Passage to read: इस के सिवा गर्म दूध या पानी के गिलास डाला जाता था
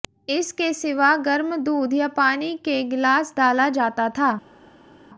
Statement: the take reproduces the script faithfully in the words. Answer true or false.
true